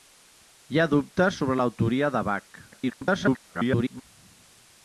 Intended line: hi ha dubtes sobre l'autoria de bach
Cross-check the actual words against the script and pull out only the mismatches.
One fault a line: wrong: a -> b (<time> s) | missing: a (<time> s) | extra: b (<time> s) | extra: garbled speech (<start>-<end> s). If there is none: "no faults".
extra: garbled speech (2.7-4.0 s)